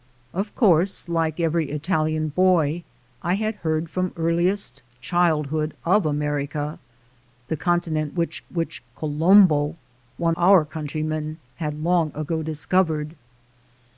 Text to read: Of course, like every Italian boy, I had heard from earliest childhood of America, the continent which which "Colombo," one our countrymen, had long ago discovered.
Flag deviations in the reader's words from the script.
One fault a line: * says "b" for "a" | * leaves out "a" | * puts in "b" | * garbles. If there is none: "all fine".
all fine